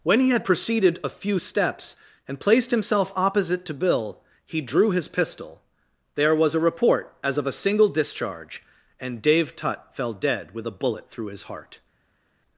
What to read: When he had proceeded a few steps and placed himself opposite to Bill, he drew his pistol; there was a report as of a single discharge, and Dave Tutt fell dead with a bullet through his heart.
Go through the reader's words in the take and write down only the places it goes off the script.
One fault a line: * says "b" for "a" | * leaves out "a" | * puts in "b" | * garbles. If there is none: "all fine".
all fine